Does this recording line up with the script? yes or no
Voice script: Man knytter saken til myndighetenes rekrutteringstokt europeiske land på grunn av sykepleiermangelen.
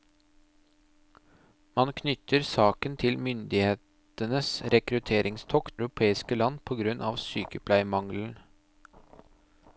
yes